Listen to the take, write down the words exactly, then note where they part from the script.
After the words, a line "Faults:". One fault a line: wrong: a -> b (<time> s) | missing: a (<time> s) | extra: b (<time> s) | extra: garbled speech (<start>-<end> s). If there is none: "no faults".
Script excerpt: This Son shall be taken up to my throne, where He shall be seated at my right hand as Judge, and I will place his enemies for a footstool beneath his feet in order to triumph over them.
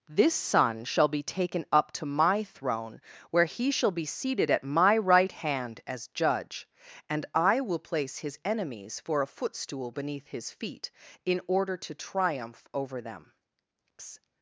This Son shall be taken up to my throne, where He shall be seated at my right hand as Judge, and I will place his enemies for a footstool beneath his feet in order to triumph over them.
Faults:
no faults